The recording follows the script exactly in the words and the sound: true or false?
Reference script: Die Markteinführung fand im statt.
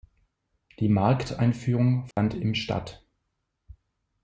false